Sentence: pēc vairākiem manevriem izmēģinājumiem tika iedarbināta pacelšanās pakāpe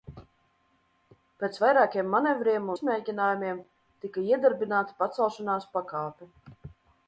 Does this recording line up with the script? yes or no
yes